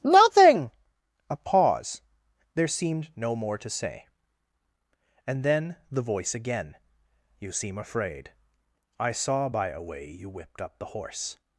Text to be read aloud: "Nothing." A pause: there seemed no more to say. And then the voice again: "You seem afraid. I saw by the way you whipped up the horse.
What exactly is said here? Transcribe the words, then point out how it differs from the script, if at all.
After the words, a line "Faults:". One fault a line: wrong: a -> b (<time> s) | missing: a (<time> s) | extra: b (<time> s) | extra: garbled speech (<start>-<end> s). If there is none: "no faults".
"Nothing." A pause: there seemed no more to say. And then the voice again: "You seem afraid. I saw by a way you whipped up the horse.
Faults:
wrong: the -> a (9.7 s)